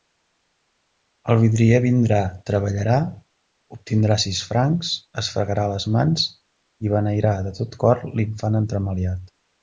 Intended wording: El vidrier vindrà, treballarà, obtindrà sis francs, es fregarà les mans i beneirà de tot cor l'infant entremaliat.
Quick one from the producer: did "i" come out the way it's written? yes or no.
yes